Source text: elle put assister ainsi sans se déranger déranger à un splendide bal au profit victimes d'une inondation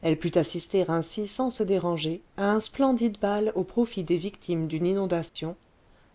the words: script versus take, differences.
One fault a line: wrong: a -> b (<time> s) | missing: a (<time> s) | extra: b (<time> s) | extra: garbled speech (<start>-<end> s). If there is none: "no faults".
missing: déranger (2.2 s)
extra: des (4.0 s)